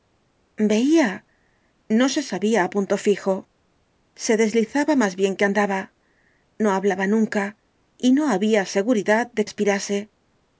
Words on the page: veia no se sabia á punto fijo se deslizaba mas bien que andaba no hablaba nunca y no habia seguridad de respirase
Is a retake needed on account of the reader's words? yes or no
no